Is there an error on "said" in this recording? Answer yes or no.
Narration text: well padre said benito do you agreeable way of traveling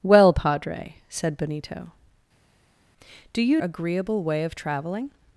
no